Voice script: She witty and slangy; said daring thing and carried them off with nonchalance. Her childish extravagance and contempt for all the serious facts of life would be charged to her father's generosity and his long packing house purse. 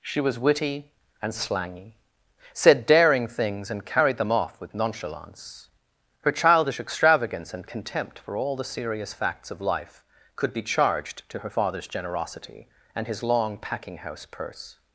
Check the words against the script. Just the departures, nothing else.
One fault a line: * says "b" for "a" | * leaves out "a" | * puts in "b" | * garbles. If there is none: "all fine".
* puts in "was"
* says "things" for "thing"
* says "could" for "would"